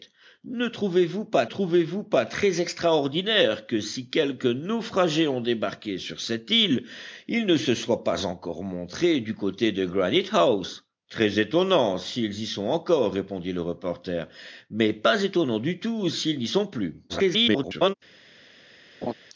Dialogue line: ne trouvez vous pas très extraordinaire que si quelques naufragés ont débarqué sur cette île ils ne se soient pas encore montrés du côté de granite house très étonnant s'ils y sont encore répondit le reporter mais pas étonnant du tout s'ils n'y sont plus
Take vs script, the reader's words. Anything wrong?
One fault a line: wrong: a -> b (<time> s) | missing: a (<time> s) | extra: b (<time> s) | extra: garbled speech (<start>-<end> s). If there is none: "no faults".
extra: trouvez vous pas (1.4 s)
extra: garbled speech (17.1-17.9 s)